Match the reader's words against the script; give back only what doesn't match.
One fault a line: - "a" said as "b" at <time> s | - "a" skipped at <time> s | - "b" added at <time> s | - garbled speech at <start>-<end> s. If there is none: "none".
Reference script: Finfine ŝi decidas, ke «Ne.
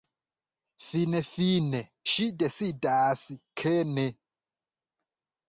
none